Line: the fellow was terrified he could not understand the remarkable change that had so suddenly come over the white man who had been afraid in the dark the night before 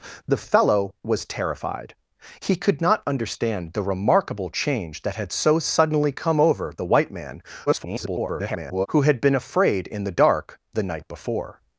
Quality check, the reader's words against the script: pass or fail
fail